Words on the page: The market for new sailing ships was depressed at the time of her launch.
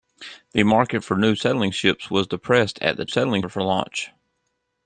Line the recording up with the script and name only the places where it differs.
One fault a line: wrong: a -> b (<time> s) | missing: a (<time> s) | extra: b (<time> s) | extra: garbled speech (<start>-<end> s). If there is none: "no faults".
wrong: time -> sailing (3.1 s)